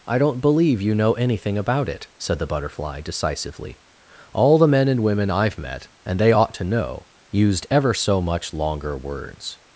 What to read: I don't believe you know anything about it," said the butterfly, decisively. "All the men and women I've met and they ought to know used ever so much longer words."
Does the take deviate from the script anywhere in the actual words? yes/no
no